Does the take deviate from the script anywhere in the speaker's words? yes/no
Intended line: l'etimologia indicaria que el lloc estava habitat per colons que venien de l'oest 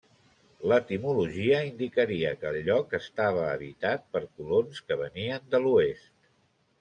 no